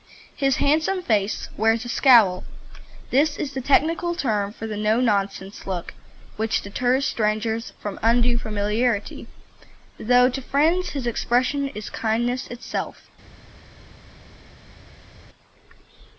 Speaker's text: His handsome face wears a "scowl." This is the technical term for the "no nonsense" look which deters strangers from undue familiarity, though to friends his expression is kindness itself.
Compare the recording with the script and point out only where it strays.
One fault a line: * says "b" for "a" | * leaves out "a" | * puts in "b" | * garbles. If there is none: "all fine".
all fine